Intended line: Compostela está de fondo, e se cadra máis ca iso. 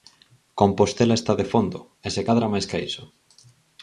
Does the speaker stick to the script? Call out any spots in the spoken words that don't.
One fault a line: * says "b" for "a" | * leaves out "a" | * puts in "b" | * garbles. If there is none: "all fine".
all fine